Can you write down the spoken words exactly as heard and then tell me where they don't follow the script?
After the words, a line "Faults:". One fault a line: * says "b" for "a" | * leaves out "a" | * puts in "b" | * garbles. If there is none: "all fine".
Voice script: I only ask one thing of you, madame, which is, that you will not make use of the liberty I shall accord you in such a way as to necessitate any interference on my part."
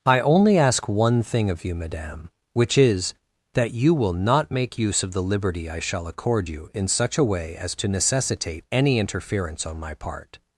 I only ask one thing of you, madame, which is, that you will not make use of the liberty I shall accord you in such a way as to necessitate any interference on my part."
Faults:
all fine